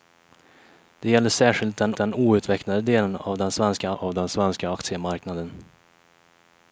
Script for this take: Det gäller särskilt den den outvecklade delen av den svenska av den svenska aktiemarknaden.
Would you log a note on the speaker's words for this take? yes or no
no